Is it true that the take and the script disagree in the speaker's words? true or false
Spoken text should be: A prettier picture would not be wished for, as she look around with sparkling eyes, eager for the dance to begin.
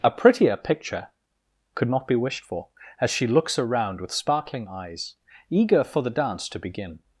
true